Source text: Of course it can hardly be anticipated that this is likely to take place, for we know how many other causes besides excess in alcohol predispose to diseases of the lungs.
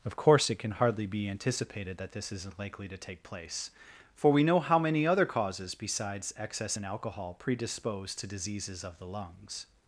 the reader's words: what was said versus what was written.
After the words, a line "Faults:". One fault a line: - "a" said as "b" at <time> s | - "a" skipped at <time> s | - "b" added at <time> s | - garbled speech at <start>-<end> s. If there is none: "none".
Of course it can hardly be anticipated that this isn't likely to take place, for we know how many other causes besides excess in alcohol predispose to diseases of the lungs.
Faults:
- "is" said as "isn't" at 2.3 s